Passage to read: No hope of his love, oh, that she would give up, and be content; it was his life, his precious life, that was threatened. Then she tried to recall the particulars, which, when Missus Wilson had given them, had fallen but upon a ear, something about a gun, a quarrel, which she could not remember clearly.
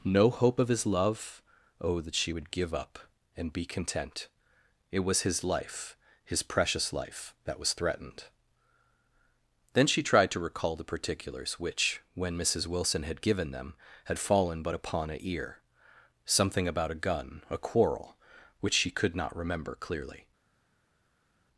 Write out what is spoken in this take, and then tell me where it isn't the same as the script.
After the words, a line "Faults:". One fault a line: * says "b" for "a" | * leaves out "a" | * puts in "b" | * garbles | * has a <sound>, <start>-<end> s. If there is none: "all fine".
No hope of his love, oh, that she would give up, and be content; it was his life, his precious life, that was threatened. Then she tried to recall the particulars, which, when Missus Wilson had given them, had fallen but upon a ear, something about a gun, a quarrel, which she could not remember clearly.
Faults:
all fine